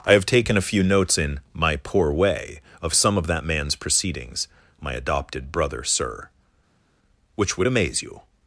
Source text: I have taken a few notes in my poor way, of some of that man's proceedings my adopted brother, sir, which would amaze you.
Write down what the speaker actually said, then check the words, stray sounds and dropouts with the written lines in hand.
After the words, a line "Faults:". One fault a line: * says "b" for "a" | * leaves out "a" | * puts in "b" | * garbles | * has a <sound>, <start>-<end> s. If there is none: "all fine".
I have taken a few notes in my poor way, of some of that man's proceedings my adopted brother, sir, which would amaze you.
Faults:
all fine